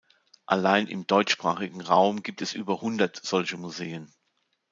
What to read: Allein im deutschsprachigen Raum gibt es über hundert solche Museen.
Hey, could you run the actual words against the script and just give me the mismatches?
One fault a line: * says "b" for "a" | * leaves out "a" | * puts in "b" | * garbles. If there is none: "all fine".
all fine